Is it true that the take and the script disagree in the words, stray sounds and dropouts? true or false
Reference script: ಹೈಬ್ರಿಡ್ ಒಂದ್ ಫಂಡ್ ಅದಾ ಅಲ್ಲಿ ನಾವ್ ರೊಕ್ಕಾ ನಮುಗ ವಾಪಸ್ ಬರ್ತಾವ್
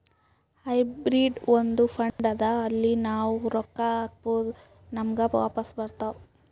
true